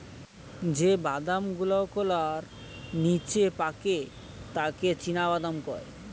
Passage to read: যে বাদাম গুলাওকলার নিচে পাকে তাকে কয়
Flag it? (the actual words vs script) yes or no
yes